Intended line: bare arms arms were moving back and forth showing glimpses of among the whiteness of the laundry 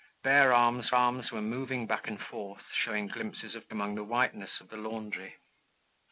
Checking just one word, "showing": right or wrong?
right